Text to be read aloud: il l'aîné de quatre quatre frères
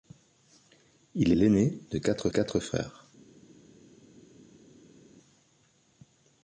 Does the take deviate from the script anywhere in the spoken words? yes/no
no